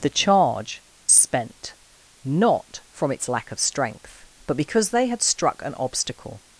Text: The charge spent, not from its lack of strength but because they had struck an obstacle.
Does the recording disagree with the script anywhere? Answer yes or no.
no